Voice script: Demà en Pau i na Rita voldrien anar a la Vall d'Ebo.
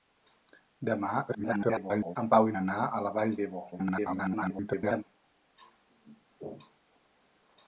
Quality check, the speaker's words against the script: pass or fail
fail